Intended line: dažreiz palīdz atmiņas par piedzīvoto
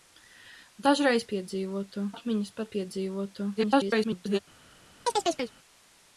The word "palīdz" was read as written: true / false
false